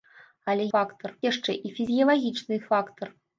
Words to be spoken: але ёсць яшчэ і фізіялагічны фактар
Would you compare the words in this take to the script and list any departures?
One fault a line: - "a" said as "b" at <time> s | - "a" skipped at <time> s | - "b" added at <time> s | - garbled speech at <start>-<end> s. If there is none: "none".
- "ёсць" said as "фактар" at 0.7 s